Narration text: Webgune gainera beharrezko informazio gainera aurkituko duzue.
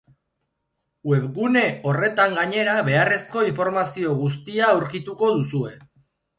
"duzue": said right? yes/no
yes